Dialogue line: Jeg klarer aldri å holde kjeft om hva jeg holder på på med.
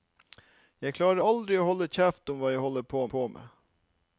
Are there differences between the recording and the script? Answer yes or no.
no